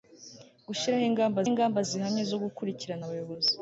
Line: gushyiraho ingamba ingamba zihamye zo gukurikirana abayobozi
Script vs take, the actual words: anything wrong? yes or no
no